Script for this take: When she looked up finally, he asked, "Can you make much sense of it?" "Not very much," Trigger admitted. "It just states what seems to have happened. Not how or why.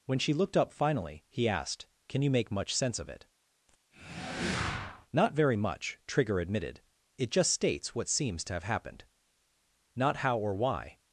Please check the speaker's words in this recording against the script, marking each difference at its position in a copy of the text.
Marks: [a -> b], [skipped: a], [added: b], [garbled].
When she looked up finally, he asked, "Can you make much sense of it?" "Not very much," Trigger admitted. "It just states what seems to have happened. Not how or why.